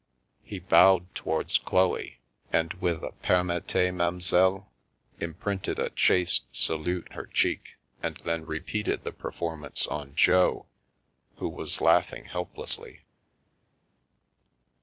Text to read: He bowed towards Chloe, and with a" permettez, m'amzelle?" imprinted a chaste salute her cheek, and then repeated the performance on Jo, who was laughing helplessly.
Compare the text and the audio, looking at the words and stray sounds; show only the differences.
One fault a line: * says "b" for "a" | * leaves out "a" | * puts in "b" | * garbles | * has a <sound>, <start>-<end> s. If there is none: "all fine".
all fine